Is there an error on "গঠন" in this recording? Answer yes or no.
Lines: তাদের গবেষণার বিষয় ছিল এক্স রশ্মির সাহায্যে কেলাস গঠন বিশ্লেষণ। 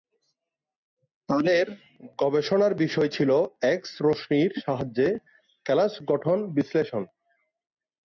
no